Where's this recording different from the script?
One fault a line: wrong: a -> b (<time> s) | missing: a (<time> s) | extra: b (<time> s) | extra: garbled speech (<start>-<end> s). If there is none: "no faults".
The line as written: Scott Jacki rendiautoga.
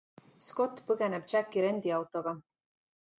extra: põgeneb (0.9 s)